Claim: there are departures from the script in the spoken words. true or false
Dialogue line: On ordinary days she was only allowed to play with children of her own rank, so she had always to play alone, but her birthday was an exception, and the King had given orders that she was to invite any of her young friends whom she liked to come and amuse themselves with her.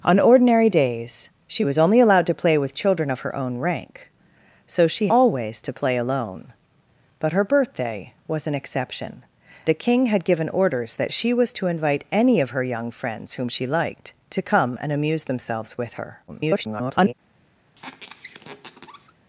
true